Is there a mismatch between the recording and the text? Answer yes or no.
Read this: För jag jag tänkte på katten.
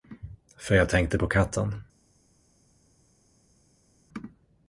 yes